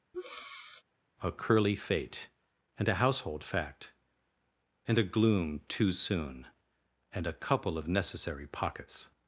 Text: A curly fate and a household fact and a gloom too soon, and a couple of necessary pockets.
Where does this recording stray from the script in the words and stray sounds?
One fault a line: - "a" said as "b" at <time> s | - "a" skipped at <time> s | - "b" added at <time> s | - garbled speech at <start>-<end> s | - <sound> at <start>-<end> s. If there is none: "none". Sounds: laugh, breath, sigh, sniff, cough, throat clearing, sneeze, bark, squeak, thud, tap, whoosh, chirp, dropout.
- breath at 0.1-0.8 s